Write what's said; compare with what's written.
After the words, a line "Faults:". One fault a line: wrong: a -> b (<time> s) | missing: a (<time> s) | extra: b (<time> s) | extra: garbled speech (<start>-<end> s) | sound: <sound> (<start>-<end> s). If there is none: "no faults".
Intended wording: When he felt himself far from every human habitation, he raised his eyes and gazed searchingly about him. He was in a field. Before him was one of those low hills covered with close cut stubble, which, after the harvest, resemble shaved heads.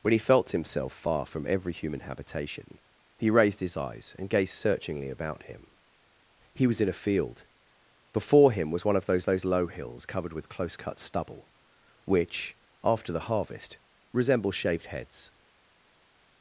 When he felt himself far from every human habitation, he raised his eyes and gazed searchingly about him. He was in a field. Before him was one of those those low hills covered with close cut stubble, which, after the harvest, resemble shaved heads.
Faults:
extra: those (9.2 s)